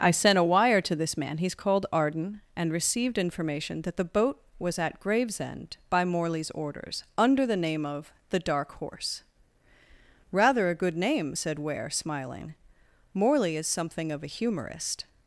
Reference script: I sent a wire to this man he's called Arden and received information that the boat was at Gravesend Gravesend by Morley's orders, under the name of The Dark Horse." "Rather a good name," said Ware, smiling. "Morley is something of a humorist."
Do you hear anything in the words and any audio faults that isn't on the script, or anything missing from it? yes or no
yes